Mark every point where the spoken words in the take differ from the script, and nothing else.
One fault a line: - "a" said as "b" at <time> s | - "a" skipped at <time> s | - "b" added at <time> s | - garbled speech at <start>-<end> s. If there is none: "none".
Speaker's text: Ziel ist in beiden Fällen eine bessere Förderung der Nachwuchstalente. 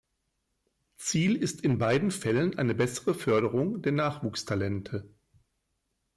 none